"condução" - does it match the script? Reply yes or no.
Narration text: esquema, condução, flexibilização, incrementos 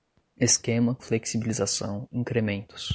no